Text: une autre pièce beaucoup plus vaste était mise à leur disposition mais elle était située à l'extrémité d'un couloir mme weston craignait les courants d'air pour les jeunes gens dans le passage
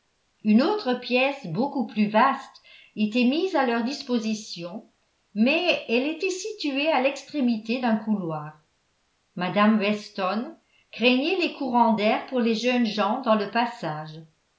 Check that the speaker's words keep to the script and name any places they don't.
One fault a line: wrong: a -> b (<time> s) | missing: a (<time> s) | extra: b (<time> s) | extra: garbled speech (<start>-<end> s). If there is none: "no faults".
no faults